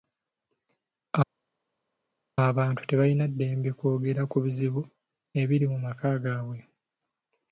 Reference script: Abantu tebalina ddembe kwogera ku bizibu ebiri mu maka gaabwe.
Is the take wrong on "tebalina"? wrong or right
right